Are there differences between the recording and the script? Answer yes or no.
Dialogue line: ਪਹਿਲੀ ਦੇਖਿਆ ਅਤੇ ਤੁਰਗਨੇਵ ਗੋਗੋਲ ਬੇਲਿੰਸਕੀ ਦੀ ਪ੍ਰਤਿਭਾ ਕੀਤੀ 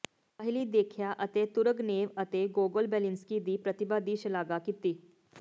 yes